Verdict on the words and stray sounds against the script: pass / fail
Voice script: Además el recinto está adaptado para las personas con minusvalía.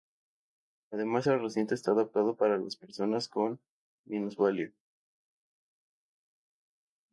pass